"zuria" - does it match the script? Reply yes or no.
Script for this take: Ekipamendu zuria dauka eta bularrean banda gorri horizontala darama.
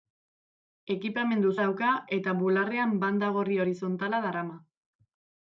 no